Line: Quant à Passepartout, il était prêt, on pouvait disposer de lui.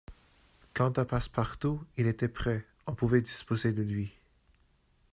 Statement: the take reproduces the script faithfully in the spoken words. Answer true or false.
true